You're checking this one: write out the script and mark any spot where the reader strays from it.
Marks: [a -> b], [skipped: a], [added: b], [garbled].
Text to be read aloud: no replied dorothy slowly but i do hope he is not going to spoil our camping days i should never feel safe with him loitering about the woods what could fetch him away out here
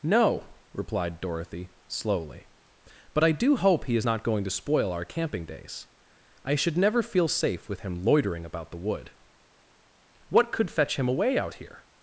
no replied dorothy slowly but i do hope he is not going to spoil our camping days i should never feel safe with him loitering about the [woods -> wood] what could fetch him away out here